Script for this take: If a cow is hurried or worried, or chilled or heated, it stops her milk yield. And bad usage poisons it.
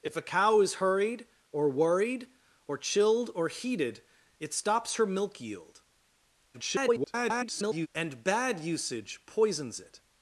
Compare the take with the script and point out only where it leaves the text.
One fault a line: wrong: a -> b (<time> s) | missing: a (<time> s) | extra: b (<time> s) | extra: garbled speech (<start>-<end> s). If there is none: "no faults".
extra: garbled speech (6.5-7.9 s)